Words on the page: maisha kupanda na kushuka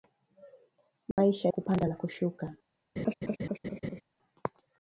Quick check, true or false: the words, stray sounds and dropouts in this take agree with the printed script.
false